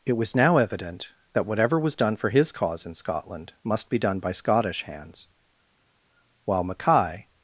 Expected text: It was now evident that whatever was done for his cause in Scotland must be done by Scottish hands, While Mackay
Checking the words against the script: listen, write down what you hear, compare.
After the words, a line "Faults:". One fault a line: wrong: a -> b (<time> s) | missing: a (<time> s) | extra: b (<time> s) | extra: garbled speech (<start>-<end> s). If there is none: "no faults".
It was now evident that whatever was done for his cause in Scotland must be done by Scottish hands, While Mackay
Faults:
no faults